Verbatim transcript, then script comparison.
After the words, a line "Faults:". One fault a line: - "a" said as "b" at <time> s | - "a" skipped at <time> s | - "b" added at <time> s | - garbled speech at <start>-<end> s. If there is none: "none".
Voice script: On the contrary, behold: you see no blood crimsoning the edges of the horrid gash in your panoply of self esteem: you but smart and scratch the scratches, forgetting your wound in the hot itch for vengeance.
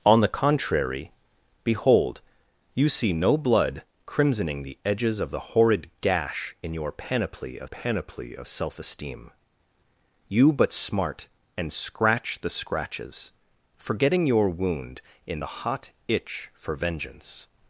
On the contrary, behold: you see no blood crimsoning the edges of the horrid gash in your panoply of panoply of self esteem: you but smart and scratch the scratches, forgetting your wound in the hot itch for vengeance.
Faults:
- "panoply of" added at 7.6 s